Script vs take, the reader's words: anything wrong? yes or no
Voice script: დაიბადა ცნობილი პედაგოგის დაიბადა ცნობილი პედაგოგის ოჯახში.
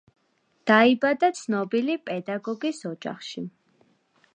yes